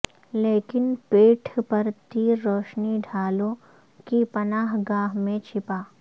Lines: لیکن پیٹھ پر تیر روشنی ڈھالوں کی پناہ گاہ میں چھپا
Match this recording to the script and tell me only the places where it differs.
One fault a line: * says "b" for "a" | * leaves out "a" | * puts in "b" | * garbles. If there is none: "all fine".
all fine